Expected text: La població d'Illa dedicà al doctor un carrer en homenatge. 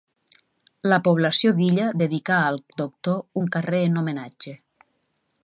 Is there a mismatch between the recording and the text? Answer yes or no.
no